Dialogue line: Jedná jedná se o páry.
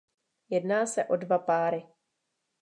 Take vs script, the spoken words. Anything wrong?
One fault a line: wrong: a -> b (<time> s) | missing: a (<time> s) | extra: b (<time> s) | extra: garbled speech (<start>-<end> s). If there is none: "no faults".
missing: jedná (0.8 s)
extra: dva (1.1 s)